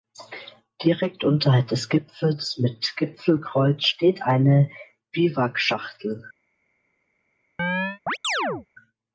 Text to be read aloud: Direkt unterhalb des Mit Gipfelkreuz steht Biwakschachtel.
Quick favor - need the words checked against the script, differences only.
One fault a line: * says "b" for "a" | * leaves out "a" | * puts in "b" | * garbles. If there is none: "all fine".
* puts in "Gipfels"
* puts in "eine"